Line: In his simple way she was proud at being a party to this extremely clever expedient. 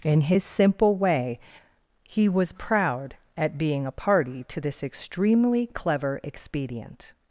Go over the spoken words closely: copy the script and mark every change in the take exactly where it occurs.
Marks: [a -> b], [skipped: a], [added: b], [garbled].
In his simple way [she -> he] was proud at being a party to this extremely clever expedient.